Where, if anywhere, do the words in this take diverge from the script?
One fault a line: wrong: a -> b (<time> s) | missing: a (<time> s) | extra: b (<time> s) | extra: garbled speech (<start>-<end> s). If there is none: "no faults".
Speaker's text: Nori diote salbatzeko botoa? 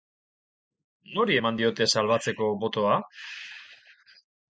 extra: eman (1.4 s)